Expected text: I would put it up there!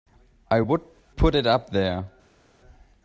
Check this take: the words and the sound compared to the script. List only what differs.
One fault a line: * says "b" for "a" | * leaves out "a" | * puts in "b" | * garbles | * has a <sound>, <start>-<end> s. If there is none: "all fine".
all fine